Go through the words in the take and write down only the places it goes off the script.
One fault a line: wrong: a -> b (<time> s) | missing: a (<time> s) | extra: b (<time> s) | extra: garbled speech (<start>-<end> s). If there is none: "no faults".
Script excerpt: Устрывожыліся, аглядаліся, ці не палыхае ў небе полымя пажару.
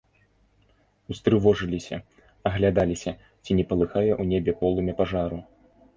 no faults